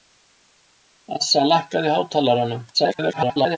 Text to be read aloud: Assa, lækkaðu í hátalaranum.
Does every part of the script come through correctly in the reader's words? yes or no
no